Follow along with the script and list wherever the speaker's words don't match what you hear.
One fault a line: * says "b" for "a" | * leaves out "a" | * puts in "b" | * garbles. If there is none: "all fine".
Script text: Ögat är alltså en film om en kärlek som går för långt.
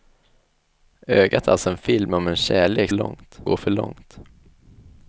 * says "långt" for "som"